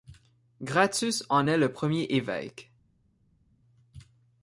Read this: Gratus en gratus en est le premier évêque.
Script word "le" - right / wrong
right